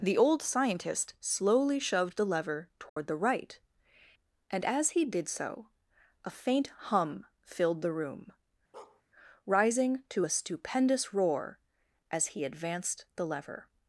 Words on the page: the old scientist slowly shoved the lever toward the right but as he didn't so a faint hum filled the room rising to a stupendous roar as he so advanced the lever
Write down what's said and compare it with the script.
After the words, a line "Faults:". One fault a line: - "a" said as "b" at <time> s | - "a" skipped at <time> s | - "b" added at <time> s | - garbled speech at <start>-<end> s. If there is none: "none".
the old scientist slowly shoved the lever toward the right and as he did so a faint hum filled the room rising to a stupendous roar as he advanced the lever
Faults:
- "but" said as "and" at 4.5 s
- "didn't" said as "did" at 5.0 s
- "so" skipped at 12.4 s